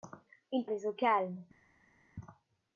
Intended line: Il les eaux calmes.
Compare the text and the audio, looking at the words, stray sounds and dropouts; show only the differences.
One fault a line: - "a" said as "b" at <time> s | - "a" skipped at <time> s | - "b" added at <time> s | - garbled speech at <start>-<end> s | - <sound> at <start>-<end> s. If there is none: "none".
none